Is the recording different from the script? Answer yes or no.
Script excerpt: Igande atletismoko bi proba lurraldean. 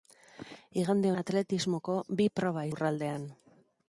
no